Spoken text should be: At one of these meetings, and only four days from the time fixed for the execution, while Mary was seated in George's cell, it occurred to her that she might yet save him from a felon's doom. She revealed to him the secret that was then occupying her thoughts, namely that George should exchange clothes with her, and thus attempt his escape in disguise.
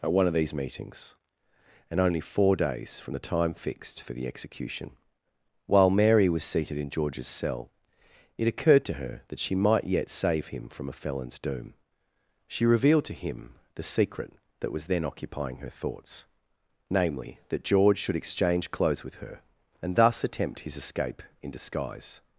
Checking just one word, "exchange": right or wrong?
right